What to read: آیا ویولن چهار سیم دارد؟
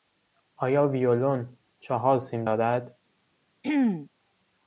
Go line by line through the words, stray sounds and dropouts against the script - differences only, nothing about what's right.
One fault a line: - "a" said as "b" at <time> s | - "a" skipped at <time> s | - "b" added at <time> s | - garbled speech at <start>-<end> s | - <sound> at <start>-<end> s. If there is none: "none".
- throat clearing at 3.6-4.1 s